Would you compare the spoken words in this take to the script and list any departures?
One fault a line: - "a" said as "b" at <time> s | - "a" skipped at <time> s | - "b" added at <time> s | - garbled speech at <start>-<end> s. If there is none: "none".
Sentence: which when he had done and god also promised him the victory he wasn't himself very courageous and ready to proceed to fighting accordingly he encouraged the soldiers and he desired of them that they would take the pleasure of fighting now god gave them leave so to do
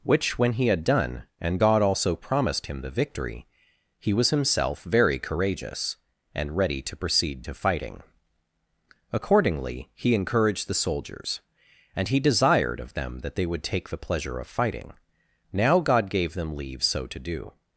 - "wasn't" said as "was" at 4.1 s